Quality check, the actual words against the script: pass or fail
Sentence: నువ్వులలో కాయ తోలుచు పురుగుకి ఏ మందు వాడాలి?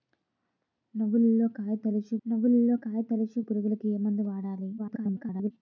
fail